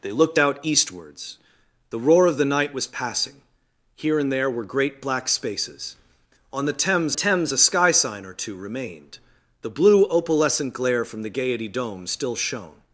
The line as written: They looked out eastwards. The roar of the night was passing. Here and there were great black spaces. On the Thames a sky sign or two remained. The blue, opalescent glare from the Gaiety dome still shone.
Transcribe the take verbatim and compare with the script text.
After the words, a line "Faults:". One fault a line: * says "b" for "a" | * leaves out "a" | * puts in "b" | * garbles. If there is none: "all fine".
They looked out eastwards. The roar of the night was passing. Here and there were great black spaces. On the Thames Thames a sky sign or two remained. The blue, opalescent glare from the Gaiety dome still shone.
Faults:
* puts in "Thames"